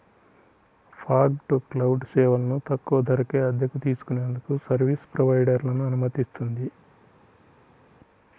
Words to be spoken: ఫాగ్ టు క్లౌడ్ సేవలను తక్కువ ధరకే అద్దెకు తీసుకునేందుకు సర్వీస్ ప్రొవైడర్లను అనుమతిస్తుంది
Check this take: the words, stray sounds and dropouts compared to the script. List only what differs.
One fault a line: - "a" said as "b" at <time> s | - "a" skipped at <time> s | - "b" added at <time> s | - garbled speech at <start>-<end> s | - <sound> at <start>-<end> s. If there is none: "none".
none